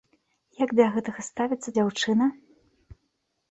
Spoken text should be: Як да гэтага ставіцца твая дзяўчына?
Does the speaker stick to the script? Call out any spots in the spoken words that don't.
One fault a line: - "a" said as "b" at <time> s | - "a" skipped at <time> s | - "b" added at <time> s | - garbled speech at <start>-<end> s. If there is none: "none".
- "твая" skipped at 1.8 s